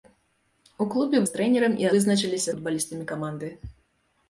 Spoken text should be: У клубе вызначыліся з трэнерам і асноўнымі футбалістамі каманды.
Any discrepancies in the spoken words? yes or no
yes